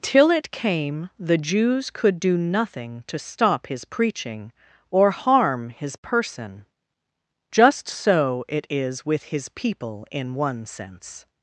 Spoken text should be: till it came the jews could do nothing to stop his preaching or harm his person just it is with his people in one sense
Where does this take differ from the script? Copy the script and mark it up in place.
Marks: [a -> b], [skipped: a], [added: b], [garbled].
till it came the jews could do nothing to stop his preaching or harm his person just [added: so] it is with his people in one sense